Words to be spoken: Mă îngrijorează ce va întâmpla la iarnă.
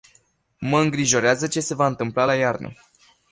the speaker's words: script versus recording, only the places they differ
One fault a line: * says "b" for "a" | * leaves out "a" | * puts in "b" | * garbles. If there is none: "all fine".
* puts in "se"